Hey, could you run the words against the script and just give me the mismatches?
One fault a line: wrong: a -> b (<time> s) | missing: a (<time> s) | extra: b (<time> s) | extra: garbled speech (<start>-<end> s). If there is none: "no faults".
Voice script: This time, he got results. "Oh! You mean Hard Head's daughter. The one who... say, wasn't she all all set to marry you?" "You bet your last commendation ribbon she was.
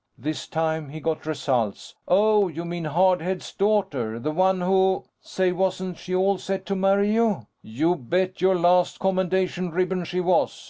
missing: all (6.4 s)